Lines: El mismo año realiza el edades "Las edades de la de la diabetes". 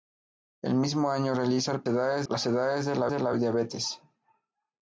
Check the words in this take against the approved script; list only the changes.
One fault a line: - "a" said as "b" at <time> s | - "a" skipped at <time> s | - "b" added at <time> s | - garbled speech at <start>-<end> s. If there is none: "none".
none